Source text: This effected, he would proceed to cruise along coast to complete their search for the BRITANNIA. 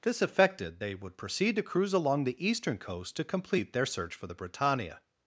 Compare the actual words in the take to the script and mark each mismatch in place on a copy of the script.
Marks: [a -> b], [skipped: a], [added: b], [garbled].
This effected, [he -> they] would proceed to cruise along [added: the eastern] coast to complete their search for the BRITANNIA.